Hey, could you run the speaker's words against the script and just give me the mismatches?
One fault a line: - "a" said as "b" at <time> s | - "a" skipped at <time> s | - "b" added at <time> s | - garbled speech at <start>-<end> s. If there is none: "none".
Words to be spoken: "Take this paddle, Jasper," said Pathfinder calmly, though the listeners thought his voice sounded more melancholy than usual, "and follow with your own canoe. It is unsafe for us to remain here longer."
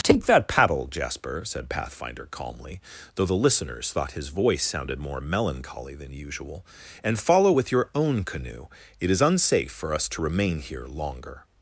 - "this" said as "that" at 0.2 s